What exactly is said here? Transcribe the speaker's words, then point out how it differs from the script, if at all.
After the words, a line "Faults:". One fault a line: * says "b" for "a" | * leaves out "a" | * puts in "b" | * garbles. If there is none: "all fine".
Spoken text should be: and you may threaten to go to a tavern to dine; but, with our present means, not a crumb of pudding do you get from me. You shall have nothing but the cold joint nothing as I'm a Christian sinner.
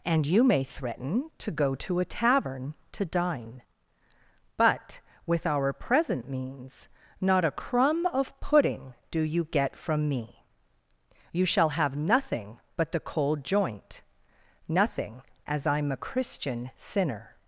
and you may threaten to go to a tavern to dine; but, with our present means, not a crumb of pudding do you get from me. You shall have nothing but the cold joint nothing as I'm a Christian sinner.
Faults:
all fine